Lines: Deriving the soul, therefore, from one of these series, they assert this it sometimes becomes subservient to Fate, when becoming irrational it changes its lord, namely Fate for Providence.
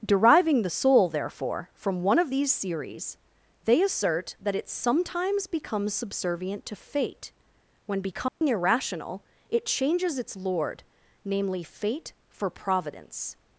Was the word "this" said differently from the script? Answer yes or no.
yes